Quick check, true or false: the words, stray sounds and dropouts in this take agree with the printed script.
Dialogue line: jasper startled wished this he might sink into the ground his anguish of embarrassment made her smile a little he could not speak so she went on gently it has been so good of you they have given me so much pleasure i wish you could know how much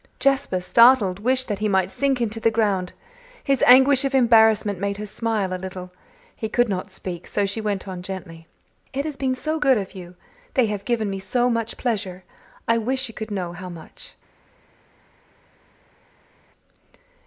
false